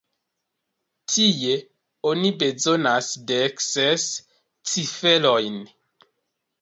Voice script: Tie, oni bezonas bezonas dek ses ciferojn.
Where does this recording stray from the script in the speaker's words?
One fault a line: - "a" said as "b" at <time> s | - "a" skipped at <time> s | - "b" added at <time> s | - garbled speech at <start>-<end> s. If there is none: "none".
- "bezonas" skipped at 3.1 s